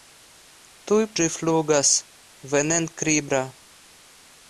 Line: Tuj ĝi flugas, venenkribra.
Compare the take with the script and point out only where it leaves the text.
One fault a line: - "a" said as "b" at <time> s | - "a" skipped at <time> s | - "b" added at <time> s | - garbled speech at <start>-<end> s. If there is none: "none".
none